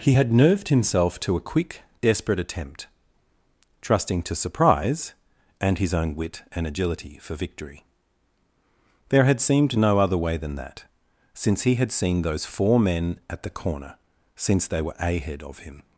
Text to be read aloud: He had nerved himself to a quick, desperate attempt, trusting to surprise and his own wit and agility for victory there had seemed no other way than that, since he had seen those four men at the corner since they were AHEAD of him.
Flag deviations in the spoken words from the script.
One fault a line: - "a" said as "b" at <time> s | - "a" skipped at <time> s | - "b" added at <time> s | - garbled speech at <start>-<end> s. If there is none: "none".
none